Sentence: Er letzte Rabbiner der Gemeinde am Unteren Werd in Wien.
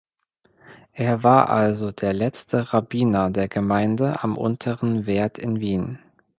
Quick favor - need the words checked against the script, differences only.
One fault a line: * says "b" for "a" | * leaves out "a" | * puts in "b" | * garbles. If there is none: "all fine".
* puts in "war also der"